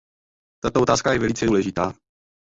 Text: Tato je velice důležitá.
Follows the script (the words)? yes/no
no